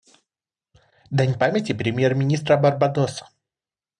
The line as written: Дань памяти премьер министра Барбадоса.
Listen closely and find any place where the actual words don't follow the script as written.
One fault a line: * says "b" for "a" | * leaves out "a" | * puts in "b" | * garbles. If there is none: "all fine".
all fine